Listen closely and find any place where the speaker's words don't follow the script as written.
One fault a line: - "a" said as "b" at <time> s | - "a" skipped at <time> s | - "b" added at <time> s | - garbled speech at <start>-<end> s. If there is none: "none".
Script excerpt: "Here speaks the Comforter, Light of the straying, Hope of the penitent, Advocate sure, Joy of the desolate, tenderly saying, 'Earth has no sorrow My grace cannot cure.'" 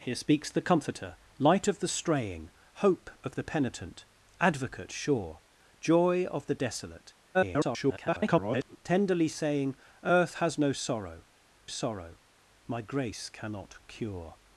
- garbled speech at 7.3-8.8 s
- "sorrow" added at 11.6 s